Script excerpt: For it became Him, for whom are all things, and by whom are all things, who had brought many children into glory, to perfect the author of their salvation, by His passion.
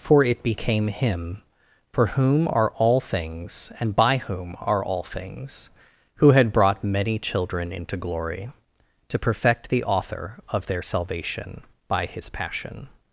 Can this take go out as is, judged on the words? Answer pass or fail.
pass